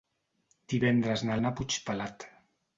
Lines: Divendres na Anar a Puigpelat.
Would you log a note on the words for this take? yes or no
no